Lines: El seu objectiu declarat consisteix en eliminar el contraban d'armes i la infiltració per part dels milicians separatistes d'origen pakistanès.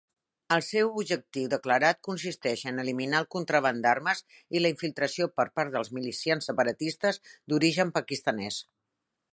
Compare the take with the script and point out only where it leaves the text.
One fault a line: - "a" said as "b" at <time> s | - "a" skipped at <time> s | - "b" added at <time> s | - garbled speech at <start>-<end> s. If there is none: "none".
none